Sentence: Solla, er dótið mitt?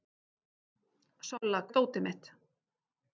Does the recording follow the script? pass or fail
pass